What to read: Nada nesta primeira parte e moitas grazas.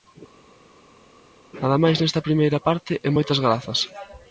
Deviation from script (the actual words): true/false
true